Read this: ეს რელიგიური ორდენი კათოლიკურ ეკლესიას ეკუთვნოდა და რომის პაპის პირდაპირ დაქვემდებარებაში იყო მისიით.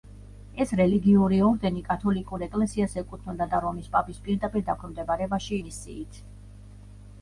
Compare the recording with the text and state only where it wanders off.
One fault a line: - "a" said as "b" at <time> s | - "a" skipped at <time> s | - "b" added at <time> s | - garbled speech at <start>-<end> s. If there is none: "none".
- "იყო" skipped at 5.5 s